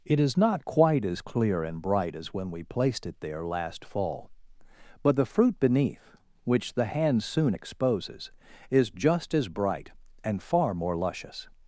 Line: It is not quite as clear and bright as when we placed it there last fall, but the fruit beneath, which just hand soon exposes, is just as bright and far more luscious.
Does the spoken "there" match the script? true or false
true